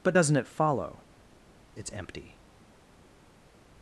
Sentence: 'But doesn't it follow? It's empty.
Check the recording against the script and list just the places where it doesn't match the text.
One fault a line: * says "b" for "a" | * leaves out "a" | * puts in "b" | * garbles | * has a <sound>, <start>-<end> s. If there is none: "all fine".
all fine